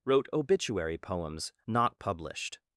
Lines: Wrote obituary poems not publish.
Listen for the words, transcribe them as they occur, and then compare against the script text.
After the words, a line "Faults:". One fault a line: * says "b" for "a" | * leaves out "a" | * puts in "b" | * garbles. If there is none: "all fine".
Wrote obituary poems not published.
Faults:
* says "published" for "publish"